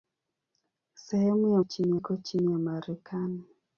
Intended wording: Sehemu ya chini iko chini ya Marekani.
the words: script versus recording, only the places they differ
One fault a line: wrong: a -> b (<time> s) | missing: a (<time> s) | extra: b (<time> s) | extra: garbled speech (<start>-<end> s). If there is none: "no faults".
no faults